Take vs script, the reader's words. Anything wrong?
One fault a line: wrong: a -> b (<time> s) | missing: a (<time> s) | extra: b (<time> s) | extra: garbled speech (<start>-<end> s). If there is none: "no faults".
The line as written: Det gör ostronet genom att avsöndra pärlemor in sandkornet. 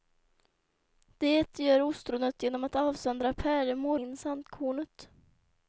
no faults